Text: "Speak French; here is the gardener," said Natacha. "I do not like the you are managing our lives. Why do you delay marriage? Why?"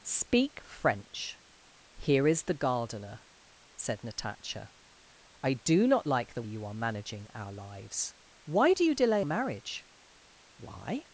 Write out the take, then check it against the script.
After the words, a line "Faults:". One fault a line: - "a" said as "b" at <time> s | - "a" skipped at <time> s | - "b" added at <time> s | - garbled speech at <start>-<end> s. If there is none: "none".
"Speak French; here is the gardener," said Natacha. "I do not like the you are managing our lives. Why do you delay marriage? Why?"
Faults:
none